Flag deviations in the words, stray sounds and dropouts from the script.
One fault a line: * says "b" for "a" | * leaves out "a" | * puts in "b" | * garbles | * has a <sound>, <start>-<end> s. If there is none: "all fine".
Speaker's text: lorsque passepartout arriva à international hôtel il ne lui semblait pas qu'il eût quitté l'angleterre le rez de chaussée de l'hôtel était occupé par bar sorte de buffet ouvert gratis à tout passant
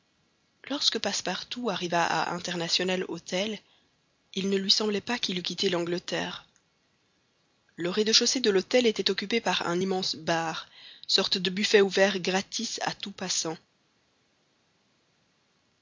* puts in "un immense"